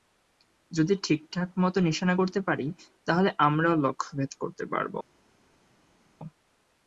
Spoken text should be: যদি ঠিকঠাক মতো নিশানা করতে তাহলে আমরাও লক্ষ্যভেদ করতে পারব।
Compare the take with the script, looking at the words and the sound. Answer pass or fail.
fail